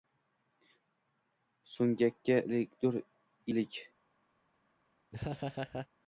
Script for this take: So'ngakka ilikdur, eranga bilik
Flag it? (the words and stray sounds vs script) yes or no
yes